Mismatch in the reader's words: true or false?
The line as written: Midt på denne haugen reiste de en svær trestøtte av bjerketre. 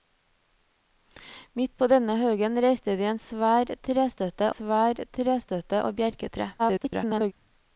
true